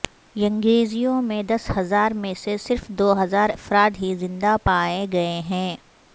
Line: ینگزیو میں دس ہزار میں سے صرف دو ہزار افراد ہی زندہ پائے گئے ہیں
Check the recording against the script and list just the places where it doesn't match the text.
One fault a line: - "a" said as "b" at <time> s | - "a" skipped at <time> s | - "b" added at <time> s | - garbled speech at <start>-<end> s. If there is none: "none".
none